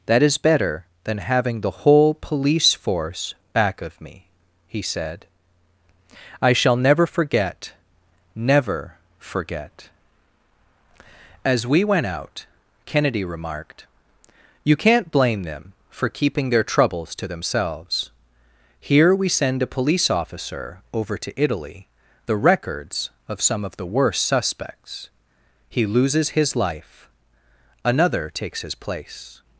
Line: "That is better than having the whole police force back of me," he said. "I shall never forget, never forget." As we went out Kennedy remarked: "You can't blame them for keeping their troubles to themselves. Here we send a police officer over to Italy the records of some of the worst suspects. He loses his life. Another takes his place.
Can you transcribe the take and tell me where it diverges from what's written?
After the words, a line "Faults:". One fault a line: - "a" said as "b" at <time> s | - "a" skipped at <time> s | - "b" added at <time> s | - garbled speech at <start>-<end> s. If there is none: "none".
"That is better than having the whole police force back of me," he said. "I shall never forget, never forget." As we went out Kennedy remarked: "You can't blame them for keeping their troubles to themselves. Here we send a police officer over to Italy the records of some of the worst suspects. He loses his life. Another takes his place.
Faults:
none